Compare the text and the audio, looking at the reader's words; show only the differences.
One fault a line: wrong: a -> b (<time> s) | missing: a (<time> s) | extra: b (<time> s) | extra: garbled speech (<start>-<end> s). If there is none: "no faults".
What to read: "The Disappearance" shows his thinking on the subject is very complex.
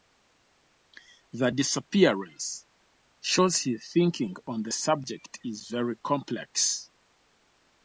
no faults